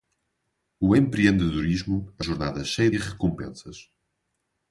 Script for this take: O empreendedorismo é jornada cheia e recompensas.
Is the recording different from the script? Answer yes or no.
no